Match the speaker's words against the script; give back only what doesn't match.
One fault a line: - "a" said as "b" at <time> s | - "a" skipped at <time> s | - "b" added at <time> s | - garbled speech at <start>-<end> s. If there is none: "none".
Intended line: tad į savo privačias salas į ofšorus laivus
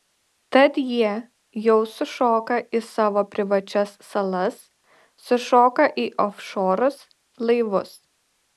- "jie jau sušoka" added at 0.9 s
- "sušoka" added at 5.3 s